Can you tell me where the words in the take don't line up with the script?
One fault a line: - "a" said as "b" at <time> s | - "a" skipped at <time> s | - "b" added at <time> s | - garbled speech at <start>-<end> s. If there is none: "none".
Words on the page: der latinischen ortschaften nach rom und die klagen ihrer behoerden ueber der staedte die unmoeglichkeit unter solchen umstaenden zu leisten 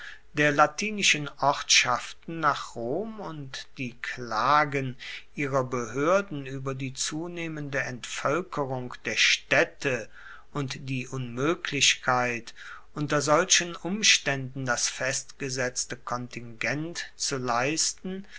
- "die zunehmende entvoelkerung" added at 6.7 s
- "und" added at 10.5 s
- "das festgesetzte kontingent" added at 14.7 s